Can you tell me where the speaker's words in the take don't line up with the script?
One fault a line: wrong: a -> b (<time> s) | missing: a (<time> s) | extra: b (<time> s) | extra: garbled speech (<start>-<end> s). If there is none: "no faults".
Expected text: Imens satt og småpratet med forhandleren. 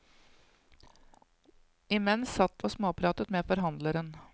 no faults